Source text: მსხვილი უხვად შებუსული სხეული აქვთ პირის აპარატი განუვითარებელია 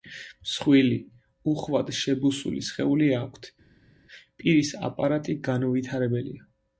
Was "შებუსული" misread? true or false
false